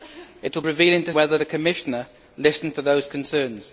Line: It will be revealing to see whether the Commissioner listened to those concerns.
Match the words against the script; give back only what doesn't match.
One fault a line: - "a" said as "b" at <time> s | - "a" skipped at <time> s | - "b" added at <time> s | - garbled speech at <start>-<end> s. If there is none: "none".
- "be" skipped at 0.6 s
- "see" skipped at 1.1 s